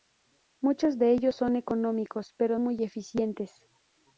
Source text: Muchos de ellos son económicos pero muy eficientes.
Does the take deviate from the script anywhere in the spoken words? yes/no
no